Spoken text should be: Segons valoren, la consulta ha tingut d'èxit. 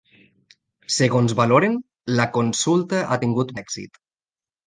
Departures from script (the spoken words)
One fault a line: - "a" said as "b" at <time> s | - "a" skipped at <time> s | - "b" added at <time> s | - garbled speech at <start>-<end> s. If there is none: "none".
none